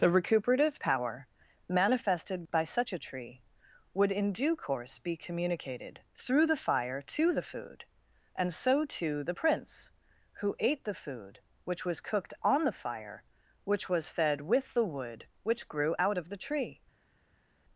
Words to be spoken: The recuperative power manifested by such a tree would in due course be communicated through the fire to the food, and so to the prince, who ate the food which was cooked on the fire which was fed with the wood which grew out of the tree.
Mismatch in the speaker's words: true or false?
false